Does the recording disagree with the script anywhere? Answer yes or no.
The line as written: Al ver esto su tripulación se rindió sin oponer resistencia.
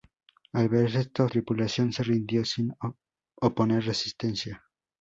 yes